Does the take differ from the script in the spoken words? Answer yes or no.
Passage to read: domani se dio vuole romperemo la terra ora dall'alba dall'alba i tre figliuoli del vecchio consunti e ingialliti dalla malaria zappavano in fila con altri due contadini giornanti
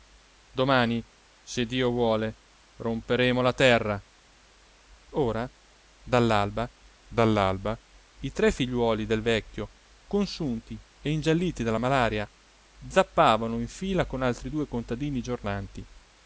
no